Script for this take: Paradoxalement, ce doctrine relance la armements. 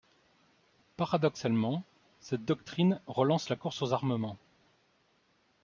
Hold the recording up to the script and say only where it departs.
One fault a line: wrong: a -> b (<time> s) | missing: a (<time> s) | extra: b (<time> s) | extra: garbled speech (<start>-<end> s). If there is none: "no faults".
wrong: ce -> cette (2.2 s)
extra: course aux (3.5 s)